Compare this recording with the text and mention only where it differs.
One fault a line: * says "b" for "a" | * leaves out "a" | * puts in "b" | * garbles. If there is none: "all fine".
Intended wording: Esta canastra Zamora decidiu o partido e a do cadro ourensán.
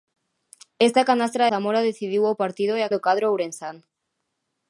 all fine